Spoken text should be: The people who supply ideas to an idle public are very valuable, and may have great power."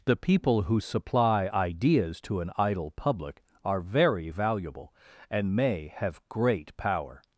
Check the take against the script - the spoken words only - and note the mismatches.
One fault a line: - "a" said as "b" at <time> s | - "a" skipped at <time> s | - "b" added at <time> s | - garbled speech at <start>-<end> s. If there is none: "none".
none